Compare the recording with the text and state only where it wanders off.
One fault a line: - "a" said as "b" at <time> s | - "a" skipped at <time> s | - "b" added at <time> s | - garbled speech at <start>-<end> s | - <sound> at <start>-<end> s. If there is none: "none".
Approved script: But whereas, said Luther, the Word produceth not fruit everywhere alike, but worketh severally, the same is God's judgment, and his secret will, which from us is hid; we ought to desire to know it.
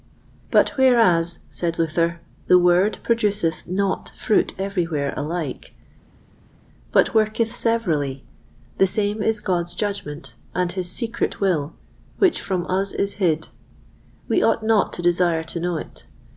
- "not" added at 14.6 s